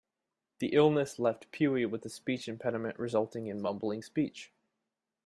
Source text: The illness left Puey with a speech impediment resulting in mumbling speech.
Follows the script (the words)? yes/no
yes